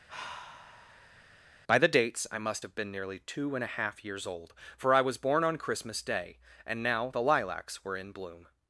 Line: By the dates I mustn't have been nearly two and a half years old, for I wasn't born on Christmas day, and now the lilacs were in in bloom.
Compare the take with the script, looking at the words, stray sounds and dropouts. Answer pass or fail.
fail